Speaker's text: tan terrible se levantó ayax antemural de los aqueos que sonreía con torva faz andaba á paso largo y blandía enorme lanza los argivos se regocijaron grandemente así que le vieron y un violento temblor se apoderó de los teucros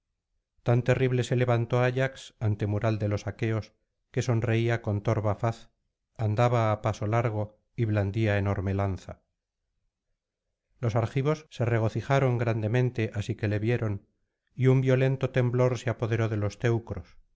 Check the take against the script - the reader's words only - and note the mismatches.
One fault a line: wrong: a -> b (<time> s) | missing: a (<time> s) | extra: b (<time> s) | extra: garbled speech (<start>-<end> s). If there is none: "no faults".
no faults